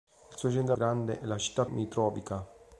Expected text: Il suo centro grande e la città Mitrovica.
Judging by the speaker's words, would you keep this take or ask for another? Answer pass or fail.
pass